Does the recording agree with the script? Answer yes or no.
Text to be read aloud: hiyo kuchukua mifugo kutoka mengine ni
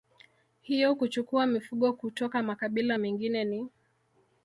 no